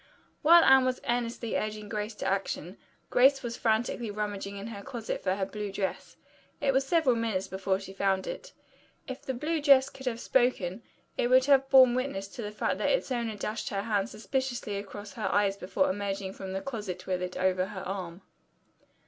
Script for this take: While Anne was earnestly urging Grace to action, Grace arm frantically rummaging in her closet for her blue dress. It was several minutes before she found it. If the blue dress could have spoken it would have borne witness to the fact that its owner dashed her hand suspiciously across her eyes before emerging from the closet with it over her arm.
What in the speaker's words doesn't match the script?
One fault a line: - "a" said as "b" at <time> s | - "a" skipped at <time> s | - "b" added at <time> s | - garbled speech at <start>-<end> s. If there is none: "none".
- "arm" said as "was" at 3.4 s